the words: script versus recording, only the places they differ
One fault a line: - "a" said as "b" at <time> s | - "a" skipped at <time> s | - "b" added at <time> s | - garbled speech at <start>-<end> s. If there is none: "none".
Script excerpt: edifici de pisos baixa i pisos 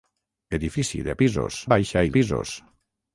none